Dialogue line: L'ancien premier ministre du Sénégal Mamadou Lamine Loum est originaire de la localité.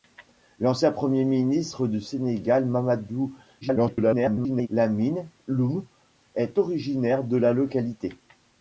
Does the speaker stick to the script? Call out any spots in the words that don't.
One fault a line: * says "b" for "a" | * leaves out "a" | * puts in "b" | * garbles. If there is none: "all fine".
* garbles